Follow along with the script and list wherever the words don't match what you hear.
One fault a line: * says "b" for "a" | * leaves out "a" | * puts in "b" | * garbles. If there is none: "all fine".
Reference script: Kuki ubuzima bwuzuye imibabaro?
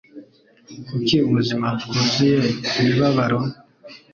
all fine